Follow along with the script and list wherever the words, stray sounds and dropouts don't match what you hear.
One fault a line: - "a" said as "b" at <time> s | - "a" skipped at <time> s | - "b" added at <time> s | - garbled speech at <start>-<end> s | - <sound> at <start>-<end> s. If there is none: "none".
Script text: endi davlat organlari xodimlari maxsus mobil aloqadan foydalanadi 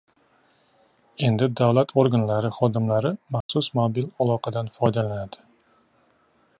- dropout at 3.4-3.5 s